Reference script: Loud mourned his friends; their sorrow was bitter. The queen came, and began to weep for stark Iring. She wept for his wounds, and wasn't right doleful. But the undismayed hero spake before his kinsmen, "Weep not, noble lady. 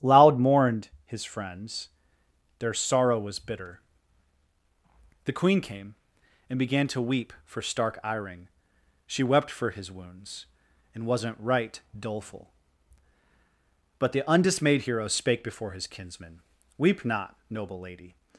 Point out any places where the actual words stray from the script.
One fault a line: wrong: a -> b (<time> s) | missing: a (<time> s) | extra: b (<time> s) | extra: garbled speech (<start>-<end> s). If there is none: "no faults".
no faults